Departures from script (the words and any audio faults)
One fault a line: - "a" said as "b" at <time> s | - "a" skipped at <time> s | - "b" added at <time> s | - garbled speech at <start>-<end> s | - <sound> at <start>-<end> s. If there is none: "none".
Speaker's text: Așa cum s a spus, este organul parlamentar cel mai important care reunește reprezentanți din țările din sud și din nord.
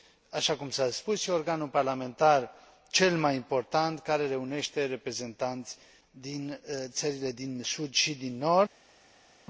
none